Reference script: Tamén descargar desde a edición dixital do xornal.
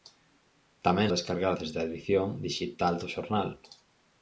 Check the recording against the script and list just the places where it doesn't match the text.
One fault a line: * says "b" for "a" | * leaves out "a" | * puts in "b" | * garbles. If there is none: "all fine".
all fine